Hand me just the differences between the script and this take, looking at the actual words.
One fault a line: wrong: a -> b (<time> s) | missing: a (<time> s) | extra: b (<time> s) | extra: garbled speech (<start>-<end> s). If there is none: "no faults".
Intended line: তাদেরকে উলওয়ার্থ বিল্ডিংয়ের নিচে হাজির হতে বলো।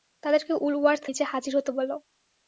missing: বিল্ডিংয়ের (1.1 s)